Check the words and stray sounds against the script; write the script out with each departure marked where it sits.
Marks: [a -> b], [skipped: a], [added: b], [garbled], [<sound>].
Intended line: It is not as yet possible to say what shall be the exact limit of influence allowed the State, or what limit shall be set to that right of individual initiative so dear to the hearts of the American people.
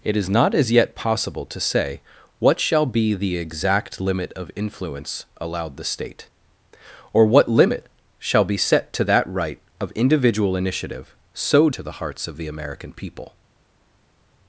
It is not as yet possible to say what shall be the exact limit of influence allowed the State, or what limit shall be set to that right of individual initiative so [skipped: dear] to the hearts of the American people.